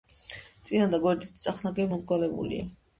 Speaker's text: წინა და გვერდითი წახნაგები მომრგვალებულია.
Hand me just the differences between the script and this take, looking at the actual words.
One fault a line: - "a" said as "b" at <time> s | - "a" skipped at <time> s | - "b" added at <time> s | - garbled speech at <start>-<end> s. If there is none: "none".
none